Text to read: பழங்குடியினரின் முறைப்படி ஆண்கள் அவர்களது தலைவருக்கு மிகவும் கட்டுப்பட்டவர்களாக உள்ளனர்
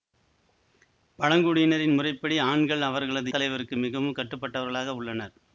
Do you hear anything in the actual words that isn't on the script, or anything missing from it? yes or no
no